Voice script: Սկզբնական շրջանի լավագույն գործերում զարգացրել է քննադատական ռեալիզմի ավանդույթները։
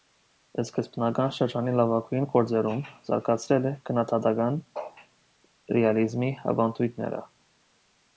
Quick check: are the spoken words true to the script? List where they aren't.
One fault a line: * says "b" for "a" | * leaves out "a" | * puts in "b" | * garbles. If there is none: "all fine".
all fine